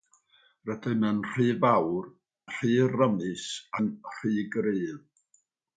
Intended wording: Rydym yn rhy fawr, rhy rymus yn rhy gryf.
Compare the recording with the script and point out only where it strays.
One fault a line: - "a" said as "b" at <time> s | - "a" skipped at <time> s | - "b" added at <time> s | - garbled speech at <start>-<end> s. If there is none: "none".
none